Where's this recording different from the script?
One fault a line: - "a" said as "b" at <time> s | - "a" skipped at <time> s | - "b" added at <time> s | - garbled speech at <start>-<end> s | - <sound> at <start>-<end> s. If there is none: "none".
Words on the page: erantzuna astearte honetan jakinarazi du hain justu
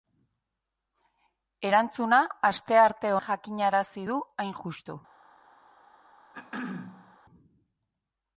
- "honetan" skipped at 3.1 s
- throat clearing at 6.3-7.2 s